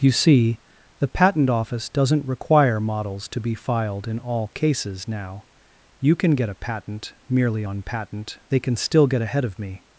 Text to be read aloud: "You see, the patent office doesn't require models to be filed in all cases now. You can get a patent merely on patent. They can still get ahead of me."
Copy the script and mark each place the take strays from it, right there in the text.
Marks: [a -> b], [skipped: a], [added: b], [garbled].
"You see, the patent office doesn't require models to be filed in all cases now. You can get a patent merely on patent. They can still get ahead of me."